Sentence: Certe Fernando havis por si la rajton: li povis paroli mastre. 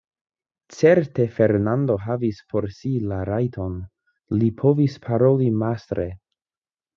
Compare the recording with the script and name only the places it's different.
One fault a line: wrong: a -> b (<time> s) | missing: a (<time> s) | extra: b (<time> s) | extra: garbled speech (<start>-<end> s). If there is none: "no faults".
no faults